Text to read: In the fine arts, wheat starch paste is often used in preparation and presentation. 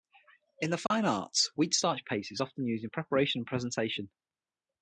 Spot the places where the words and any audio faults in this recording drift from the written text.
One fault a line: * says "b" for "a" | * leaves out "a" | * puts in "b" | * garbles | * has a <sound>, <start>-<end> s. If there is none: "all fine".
* has a dropout, 0.9-0.9 s